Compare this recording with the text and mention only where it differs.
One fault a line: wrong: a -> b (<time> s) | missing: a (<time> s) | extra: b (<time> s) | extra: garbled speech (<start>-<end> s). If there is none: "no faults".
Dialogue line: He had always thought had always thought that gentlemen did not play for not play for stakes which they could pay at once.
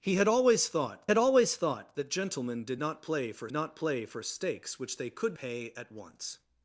no faults